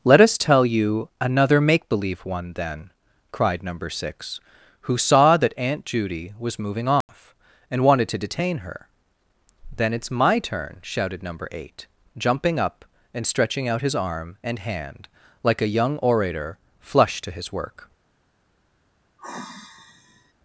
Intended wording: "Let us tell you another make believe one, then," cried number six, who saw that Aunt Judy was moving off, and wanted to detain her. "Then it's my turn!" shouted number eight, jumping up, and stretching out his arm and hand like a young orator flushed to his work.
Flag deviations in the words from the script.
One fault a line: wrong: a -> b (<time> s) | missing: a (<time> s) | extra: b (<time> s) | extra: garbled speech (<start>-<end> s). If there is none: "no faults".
no faults